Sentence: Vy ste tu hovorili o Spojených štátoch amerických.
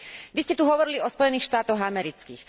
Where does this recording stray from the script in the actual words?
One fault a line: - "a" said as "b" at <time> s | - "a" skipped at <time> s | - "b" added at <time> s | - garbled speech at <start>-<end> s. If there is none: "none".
none